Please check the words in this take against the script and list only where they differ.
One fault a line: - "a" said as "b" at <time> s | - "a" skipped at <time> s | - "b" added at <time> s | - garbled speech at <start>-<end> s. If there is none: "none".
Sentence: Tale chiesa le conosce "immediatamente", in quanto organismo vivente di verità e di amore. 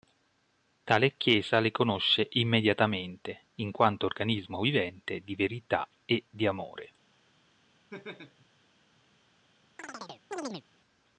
none